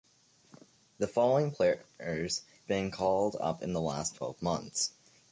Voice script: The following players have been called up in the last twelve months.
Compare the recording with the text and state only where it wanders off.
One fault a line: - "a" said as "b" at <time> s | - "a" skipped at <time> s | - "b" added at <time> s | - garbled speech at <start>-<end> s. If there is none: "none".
- "have" skipped at 2.5 s